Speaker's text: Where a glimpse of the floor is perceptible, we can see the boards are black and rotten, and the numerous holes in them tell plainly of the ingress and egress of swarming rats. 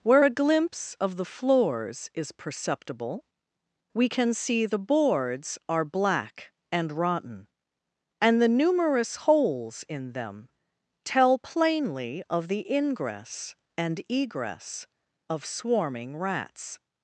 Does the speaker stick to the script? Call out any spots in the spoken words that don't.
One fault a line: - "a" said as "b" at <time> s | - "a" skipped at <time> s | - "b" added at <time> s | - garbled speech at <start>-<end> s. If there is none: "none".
- "floor" said as "floors" at 1.2 s